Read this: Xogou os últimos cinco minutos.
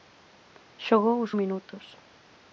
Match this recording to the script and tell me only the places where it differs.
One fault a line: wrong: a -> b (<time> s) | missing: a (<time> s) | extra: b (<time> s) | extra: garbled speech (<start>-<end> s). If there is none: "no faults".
missing: últimos cinco (1.3 s)